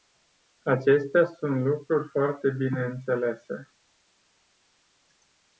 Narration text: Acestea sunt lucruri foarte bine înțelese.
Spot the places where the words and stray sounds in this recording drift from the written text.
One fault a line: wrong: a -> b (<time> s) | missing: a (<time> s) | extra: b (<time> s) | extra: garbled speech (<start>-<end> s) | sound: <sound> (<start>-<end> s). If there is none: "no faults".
no faults